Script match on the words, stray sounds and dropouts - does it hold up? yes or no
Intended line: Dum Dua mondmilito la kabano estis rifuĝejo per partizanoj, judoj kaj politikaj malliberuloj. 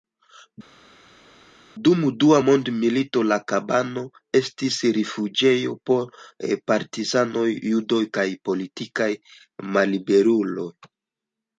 no